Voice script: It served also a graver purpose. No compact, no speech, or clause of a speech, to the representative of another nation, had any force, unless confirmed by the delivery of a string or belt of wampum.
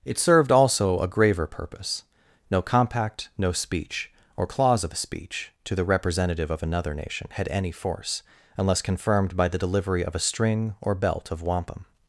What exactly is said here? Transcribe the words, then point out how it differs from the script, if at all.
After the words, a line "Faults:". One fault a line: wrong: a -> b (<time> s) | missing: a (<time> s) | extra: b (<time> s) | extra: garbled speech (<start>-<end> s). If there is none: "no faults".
It served also a graver purpose. No compact, no speech, or clause of a speech, to the representative of another nation, had any force, unless confirmed by the delivery of a string or belt of wampum.
Faults:
no faults